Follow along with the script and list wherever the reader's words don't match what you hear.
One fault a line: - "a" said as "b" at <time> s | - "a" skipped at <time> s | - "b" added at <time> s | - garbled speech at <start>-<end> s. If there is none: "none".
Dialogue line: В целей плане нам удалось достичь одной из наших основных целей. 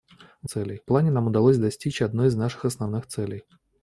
none